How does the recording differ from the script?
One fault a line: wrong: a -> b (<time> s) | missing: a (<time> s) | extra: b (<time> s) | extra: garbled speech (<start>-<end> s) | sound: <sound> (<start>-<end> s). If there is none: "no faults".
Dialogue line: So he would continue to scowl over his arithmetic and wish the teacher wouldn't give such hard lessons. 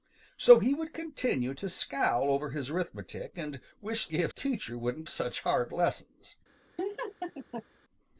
wrong: the -> give (4.1 s)
missing: give (5.1 s)
sound: laugh (6.8-7.6 s)